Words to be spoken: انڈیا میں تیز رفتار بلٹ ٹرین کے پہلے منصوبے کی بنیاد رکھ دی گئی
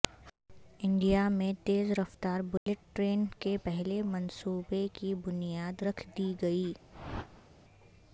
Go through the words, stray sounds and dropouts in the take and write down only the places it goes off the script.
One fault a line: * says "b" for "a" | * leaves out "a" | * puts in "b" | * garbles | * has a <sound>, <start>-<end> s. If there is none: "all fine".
* has a dropout, 2.6-2.7 s
* has a whoosh, 6.9-7.5 s